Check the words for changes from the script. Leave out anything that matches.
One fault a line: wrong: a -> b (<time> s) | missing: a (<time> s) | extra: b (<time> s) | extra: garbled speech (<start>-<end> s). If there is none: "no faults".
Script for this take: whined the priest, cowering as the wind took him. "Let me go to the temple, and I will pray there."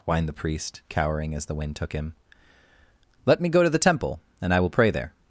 no faults